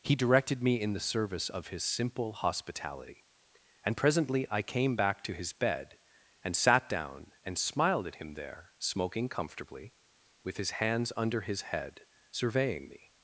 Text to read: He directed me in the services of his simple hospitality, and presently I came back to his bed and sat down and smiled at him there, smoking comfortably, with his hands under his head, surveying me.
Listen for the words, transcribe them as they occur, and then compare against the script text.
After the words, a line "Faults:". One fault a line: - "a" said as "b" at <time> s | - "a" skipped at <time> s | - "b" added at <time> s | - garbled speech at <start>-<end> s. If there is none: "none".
He directed me in the service of his simple hospitality, and presently I came back to his bed and sat down and smiled at him there, smoking comfortably, with his hands under his head, surveying me.
Faults:
- "services" said as "service" at 1.0 s